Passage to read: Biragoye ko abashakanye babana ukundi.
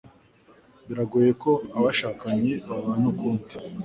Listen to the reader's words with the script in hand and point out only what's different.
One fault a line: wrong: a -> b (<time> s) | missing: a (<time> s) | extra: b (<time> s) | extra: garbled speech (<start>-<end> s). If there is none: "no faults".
no faults